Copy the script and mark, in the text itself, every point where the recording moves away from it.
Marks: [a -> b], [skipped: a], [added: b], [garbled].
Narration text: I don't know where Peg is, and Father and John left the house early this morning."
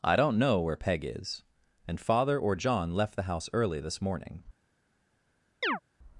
I don't know where Peg is, and Father [and -> or] John left the house early this morning."